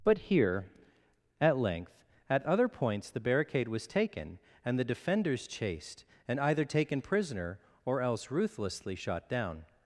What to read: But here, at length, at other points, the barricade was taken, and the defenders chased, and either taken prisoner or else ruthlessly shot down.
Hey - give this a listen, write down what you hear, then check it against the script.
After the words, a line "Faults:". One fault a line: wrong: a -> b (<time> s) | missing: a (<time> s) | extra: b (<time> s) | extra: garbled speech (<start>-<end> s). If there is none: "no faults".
But here, at length, at other points, the barricade was taken, and the defenders chased, and either taken prisoner or else ruthlessly shot down.
Faults:
no faults